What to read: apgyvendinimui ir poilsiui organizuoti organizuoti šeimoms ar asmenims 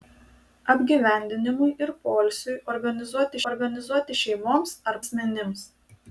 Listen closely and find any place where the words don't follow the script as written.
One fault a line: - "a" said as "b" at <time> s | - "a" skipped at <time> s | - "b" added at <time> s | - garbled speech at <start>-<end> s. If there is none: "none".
none